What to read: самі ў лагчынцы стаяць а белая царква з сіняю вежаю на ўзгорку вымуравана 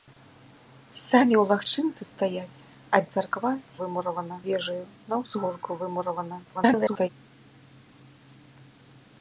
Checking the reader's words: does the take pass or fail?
fail